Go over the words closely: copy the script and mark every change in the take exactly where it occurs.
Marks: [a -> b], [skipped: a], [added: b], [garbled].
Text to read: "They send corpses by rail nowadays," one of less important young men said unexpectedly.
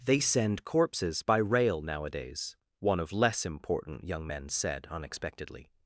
"They send corpses by rail nowadays," one of less important young men said unexpectedly.